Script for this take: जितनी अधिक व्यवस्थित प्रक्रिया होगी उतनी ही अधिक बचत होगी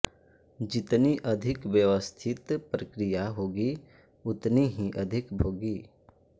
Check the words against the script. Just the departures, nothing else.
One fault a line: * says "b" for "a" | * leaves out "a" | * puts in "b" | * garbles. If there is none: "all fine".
* leaves out "बचत"